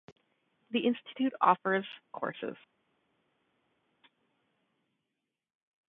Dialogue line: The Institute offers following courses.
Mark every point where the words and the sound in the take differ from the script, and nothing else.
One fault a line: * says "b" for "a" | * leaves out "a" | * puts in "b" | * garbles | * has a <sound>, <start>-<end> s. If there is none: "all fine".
* leaves out "following"